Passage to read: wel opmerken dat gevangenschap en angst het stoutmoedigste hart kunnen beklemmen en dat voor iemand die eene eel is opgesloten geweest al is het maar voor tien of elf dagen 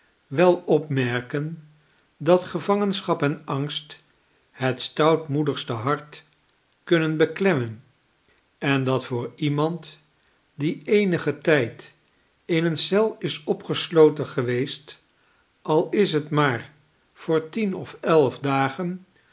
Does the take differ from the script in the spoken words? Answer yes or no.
yes